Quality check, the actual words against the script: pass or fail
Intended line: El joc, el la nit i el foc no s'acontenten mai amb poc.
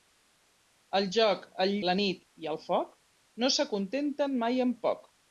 pass